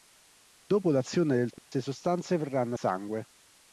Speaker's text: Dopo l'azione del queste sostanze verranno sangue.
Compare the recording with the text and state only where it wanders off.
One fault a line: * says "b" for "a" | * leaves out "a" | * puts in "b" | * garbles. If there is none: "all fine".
all fine